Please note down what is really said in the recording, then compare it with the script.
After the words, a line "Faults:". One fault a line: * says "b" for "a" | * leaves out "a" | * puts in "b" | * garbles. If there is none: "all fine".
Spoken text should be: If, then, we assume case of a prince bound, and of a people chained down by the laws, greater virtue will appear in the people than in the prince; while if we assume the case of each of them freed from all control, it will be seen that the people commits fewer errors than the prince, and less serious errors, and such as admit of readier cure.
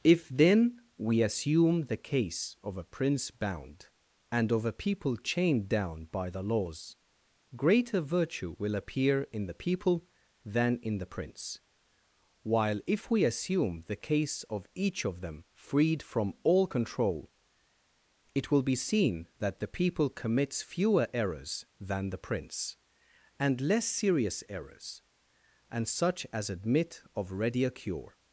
If, then, we assume the case of a prince bound, and of a people chained down by the laws, greater virtue will appear in the people than in the prince; while if we assume the case of each of them freed from all control, it will be seen that the people commits fewer errors than the prince, and less serious errors, and such as admit of readier cure.
Faults:
* puts in "the"